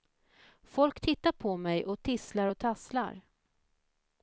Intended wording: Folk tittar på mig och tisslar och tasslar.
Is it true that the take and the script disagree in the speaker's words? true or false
false